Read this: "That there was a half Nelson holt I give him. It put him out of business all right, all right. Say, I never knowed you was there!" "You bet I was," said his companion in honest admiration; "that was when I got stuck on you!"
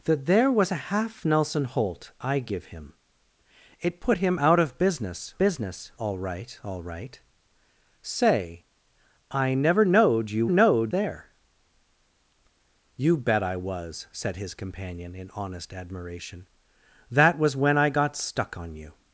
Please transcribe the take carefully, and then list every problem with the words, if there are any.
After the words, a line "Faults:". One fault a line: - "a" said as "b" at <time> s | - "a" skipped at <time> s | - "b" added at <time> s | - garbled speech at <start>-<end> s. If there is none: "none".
"That there was a half Nelson holt I give him. It put him out of business business all right, all right. Say, I never knowed you knowed there!" "You bet I was," said his companion in honest admiration; "that was when I got stuck on you!"
Faults:
- "business" added at 5.4 s
- "was" said as "knowed" at 10.5 s